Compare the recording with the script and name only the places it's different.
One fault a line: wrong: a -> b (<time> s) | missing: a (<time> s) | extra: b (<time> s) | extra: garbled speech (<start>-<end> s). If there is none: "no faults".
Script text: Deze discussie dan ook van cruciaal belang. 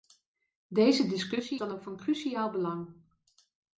no faults